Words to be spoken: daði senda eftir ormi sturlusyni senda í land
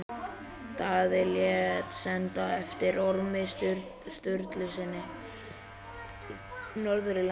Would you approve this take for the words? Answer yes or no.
no